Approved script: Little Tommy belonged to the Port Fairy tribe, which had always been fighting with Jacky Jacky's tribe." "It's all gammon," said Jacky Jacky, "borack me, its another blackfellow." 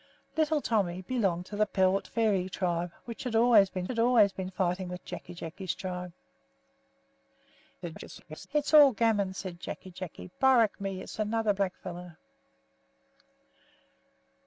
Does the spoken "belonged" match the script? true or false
true